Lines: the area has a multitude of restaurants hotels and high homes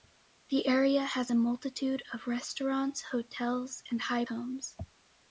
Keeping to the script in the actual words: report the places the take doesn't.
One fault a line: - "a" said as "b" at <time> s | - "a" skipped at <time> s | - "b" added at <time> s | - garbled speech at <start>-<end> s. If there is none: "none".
none